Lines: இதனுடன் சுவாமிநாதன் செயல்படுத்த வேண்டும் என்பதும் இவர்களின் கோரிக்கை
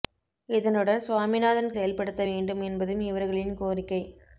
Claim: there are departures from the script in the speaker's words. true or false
false